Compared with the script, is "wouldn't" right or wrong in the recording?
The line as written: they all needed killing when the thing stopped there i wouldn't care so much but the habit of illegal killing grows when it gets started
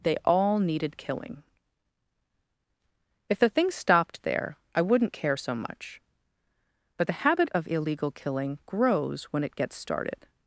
right